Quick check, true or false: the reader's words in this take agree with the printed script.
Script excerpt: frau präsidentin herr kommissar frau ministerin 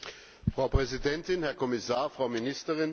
true